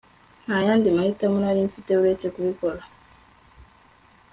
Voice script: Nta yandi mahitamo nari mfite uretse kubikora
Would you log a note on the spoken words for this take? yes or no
no